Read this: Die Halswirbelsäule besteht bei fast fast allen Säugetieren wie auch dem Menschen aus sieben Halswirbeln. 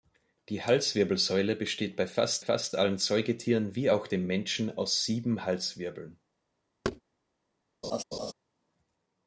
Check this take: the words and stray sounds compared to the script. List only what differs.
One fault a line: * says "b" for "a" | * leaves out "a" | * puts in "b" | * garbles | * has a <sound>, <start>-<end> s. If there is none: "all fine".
* has a thud, 6.8-7.0 s
* has a laugh, 7.8-8.3 s